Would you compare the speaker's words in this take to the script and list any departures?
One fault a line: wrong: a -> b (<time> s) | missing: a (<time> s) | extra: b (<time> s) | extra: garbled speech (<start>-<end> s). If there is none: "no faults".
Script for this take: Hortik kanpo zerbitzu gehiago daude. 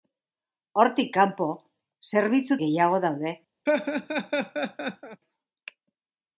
no faults